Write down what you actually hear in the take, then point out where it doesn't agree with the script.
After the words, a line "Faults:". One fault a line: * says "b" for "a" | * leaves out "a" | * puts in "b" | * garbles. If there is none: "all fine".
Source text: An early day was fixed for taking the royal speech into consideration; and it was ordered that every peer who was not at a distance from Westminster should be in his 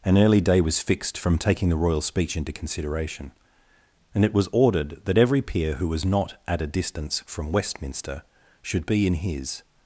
An early day was fixed from taking the royal speech into consideration; and it was ordered that every peer who was not at a distance from Westminster should be in his
Faults:
* says "from" for "for"